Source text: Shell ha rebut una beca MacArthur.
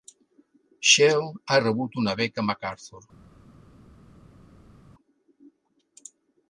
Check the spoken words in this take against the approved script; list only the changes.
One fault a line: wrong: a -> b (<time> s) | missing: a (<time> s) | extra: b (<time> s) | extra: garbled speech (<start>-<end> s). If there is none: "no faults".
no faults